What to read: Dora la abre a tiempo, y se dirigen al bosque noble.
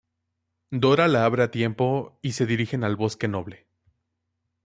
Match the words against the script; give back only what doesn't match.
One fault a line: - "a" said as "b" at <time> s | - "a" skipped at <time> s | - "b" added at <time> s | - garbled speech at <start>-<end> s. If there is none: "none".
none